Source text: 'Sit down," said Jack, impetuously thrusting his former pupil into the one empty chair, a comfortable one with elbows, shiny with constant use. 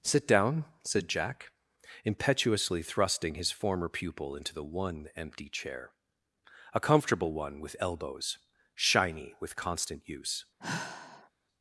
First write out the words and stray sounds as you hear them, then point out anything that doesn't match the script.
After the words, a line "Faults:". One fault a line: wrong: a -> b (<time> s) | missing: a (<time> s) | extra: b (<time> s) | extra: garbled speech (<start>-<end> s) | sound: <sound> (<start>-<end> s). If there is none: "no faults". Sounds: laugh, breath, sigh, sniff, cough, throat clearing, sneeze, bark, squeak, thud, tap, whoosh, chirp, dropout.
'Sit down," said Jack, impetuously thrusting his former pupil into the one empty chair, a comfortable one with elbows, shiny with constant use.
Faults:
sound: sigh (10.6-11.3 s)